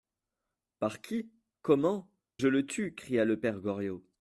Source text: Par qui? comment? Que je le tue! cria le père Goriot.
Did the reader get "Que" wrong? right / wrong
wrong